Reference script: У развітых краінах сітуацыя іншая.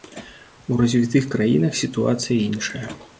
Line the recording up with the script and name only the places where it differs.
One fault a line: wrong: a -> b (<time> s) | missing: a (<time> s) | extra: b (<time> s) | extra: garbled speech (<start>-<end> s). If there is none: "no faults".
no faults